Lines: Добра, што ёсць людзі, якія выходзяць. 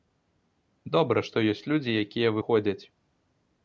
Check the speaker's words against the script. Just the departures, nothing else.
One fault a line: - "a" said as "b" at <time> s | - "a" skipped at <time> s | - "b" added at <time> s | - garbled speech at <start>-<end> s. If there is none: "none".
none